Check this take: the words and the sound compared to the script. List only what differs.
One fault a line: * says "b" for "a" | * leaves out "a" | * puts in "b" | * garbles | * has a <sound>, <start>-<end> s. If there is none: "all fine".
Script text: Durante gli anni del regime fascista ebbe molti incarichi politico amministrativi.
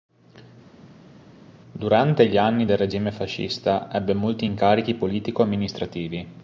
all fine